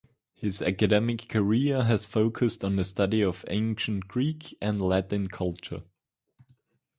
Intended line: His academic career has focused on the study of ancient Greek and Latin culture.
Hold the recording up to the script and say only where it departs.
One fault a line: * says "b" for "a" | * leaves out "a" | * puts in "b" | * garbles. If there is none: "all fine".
all fine